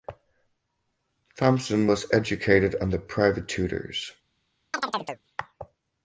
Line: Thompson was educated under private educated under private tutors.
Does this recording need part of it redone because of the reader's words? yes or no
yes